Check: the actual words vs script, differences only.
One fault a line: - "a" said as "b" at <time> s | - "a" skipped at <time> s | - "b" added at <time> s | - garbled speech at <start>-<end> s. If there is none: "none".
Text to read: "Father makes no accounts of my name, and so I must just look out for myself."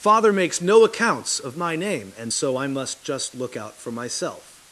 none